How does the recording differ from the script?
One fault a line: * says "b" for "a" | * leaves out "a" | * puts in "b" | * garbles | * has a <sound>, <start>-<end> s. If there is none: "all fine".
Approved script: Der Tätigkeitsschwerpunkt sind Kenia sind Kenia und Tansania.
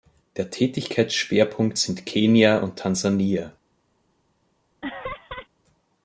* leaves out "sind Kenia"
* has a laugh, 4.8-5.5 s